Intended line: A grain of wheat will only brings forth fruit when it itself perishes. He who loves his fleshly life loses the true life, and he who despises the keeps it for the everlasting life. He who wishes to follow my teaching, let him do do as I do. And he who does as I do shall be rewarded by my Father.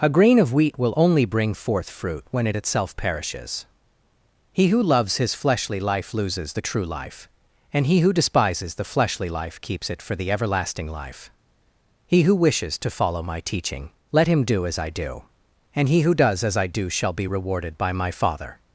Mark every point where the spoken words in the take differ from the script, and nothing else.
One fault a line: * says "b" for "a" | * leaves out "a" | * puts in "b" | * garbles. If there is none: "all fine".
* says "bring" for "brings"
* puts in "fleshly life"
* leaves out "do"